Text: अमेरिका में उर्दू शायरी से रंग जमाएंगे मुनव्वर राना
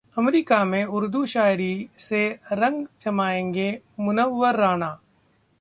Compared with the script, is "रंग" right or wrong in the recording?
right